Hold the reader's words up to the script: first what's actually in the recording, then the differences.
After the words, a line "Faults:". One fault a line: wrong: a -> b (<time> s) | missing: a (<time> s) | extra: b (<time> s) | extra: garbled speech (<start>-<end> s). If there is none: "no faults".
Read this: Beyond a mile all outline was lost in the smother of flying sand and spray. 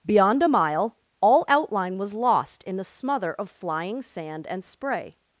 Beyond a mile all outline was lost in the smother of flying sand and spray.
Faults:
no faults